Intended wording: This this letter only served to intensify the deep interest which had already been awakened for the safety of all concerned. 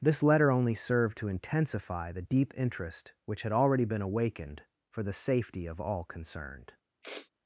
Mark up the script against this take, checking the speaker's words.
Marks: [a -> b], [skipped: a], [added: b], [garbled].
This [skipped: this] letter only served to intensify the deep interest which had already been awakened for the safety of all concerned.